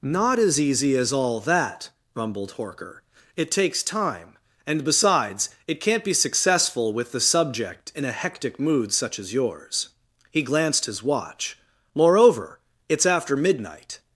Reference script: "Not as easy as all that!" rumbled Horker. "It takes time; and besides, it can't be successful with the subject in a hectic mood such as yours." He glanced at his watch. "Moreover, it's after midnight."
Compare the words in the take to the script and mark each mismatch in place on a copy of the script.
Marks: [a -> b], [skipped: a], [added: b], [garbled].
"Not as easy as all that!" rumbled Horker. "It takes time; and besides, it can't be successful with the subject in a hectic mood such as yours." He glanced [skipped: at] his watch. "Moreover, it's after midnight."